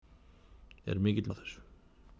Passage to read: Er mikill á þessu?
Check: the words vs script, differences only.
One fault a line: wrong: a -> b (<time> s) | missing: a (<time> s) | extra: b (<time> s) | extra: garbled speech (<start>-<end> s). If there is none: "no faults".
no faults